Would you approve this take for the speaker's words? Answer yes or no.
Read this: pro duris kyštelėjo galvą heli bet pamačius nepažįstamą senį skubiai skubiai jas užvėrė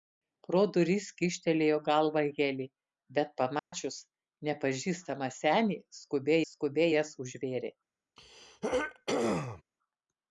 yes